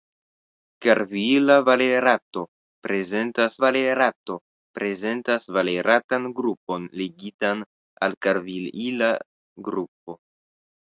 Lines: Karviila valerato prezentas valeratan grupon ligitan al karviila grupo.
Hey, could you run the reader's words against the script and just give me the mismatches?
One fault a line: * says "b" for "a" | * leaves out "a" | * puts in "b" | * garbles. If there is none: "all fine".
* puts in "valerato prezentas"